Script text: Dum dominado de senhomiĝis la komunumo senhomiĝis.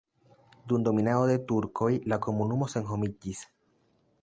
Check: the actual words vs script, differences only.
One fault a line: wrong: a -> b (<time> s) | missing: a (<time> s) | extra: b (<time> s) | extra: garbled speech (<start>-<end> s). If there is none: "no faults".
wrong: senhomiĝis -> turkoj (1.5 s)